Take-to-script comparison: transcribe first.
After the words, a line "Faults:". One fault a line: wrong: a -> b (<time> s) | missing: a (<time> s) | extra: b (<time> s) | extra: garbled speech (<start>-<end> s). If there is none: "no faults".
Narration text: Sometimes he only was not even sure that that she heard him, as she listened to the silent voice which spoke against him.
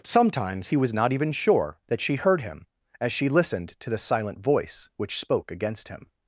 Sometimes he was not even sure that she heard him, as she listened to the silent voice which spoke against him.
Faults:
missing: only (0.8 s)
missing: that (2.0 s)